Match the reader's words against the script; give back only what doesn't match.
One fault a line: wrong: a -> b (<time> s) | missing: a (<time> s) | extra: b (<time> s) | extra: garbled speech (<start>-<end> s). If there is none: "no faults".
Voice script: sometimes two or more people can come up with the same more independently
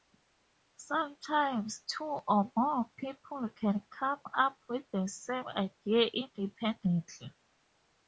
wrong: more -> idea (5.5 s)